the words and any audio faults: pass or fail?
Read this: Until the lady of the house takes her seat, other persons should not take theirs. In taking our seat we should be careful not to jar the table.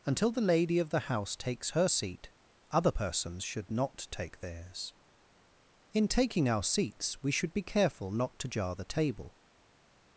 fail